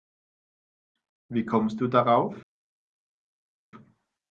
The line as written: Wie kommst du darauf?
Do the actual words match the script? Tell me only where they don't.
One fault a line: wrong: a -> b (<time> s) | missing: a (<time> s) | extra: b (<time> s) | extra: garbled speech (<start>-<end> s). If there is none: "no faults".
no faults